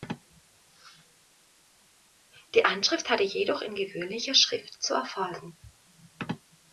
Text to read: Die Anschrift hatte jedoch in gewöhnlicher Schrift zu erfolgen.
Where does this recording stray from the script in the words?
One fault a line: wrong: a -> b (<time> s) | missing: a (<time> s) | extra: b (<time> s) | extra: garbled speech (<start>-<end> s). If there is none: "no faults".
no faults